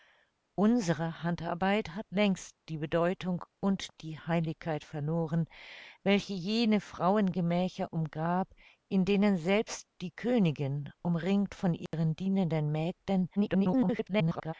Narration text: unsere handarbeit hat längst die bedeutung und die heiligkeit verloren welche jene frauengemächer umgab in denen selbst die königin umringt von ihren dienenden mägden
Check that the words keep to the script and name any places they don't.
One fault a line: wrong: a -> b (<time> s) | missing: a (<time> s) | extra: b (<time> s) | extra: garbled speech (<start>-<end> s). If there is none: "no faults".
extra: garbled speech (13.4-14.5 s)